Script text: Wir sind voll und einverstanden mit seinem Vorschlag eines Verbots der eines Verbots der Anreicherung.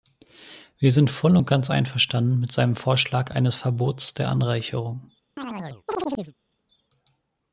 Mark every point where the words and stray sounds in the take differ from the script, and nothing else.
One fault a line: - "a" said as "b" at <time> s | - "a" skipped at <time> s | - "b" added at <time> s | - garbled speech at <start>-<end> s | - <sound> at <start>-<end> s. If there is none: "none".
- "ganz" added at 1.5 s
- "eines Verbots der" skipped at 4.3 s
- chirp at 5.4-6.3 s